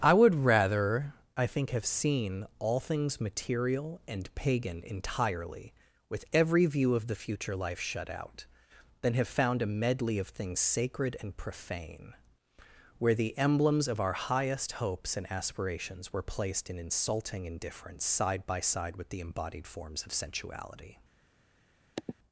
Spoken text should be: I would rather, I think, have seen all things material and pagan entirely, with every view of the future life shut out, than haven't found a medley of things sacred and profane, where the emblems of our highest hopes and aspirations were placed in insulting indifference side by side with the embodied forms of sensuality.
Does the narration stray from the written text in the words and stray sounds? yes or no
yes